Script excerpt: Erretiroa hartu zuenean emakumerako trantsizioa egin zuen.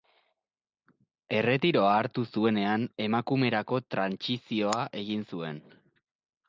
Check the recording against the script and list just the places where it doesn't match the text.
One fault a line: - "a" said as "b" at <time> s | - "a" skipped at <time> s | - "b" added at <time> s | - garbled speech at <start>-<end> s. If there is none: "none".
none